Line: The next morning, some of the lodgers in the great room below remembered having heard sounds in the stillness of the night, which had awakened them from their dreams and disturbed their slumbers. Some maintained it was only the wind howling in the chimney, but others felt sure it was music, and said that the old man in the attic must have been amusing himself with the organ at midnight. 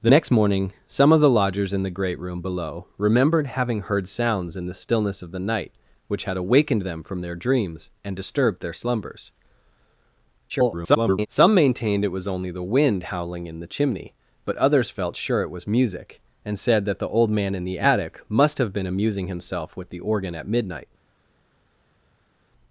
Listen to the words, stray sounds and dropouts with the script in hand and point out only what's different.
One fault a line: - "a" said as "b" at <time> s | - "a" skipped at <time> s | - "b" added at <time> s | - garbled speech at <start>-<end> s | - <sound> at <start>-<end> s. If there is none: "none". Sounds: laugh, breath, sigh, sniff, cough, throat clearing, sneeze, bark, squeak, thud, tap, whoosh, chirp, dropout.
- garbled speech at 10.5-11.3 s